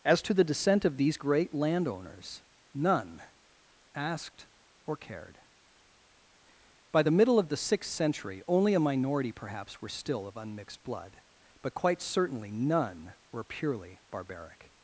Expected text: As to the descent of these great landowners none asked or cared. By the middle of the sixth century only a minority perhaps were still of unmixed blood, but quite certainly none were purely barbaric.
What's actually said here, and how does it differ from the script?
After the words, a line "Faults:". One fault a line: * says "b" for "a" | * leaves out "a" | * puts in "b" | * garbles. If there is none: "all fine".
As to the descent of these great landowners none asked or cared. By the middle of the sixth century only a minority perhaps were still of unmixed blood, but quite certainly none were purely barbaric.
Faults:
all fine